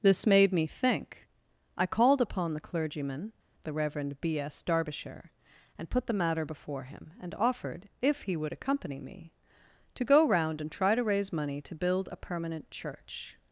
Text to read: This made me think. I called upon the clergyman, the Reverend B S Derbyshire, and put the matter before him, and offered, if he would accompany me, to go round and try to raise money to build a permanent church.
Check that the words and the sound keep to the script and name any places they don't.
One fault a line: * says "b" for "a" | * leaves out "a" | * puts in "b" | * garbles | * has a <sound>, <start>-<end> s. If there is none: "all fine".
all fine